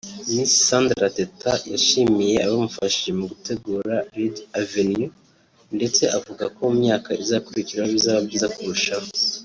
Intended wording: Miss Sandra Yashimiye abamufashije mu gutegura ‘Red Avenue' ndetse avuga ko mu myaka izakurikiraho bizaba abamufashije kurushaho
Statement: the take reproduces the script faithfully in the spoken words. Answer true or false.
false